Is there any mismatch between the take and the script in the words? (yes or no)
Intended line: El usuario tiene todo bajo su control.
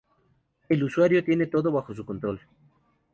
no